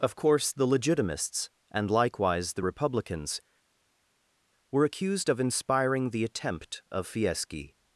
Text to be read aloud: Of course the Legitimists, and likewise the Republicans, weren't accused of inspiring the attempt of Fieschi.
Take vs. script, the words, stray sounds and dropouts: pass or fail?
fail